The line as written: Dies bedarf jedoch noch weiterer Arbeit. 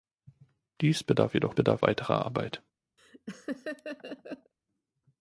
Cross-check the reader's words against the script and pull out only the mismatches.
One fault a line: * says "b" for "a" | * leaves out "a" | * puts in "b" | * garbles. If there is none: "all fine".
* says "bedarf" for "noch"